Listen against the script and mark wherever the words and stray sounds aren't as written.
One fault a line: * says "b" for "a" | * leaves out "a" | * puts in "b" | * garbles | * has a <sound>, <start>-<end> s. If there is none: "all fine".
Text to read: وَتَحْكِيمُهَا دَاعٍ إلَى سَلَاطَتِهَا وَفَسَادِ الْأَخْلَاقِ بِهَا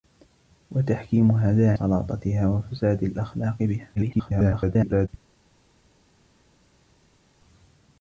* leaves out "إلَى"
* garbles